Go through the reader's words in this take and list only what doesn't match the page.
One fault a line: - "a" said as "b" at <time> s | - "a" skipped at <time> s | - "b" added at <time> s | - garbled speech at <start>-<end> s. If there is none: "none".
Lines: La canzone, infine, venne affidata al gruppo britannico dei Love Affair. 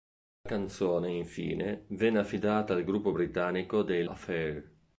- "Love" skipped at 4.1 s